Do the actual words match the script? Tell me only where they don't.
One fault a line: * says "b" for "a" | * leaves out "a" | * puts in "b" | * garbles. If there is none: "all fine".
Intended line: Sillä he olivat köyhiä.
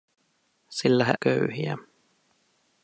* leaves out "olivat"